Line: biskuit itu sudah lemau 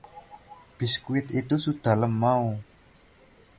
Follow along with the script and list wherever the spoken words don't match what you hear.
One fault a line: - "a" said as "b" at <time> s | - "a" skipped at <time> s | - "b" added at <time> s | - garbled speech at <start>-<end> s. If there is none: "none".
none